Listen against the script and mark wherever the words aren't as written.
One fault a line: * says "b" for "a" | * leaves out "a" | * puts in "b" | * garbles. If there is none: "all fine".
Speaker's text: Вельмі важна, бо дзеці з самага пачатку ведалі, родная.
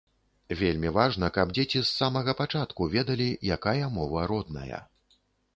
* says "каб" for "бо"
* puts in "якая мова"